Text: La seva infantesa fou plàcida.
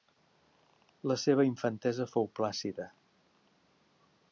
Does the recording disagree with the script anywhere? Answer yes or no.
no